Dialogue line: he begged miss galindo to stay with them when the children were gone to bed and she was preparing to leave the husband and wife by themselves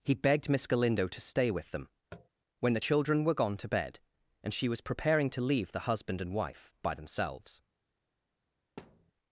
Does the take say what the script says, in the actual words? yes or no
yes